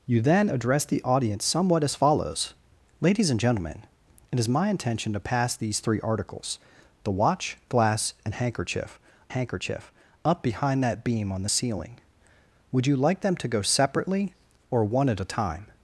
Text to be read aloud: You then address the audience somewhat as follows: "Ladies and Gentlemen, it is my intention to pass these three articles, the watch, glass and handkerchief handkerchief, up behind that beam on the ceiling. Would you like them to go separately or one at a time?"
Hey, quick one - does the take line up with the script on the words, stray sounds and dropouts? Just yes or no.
yes